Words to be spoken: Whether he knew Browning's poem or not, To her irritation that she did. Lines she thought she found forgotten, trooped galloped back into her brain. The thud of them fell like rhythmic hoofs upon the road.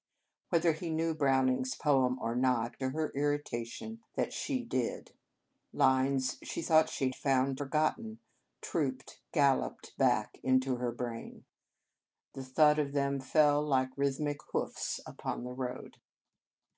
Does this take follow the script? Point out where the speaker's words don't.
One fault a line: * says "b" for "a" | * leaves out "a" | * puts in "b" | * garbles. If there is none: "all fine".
all fine